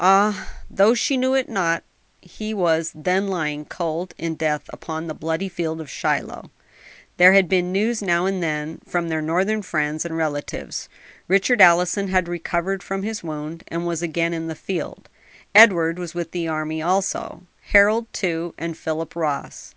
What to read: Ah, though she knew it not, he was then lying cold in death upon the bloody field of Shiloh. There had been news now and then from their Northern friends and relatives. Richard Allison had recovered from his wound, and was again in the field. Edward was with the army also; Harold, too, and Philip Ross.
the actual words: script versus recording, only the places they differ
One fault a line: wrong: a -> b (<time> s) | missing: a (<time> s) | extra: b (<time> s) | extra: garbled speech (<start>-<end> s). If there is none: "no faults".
no faults